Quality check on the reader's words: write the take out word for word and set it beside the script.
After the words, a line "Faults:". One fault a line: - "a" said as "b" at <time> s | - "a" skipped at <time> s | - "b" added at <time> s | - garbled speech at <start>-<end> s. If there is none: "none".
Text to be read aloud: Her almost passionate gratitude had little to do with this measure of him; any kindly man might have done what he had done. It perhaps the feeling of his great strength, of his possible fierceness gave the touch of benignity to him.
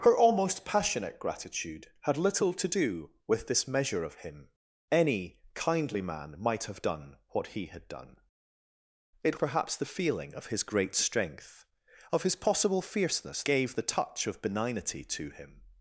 Her almost passionate gratitude had little to do with this measure of him; any kindly man might have done what he had done. It perhaps the feeling of his great strength, of his possible fierceness gave the touch of benignity to him.
Faults:
none